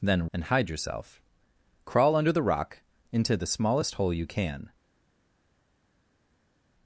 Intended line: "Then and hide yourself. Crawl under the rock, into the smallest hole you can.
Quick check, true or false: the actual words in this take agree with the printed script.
true